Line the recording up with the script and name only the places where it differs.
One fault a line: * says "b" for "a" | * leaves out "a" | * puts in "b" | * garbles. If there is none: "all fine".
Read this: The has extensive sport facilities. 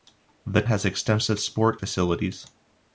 all fine